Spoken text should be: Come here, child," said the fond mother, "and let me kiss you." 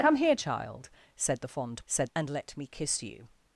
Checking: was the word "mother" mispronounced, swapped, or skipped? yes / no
yes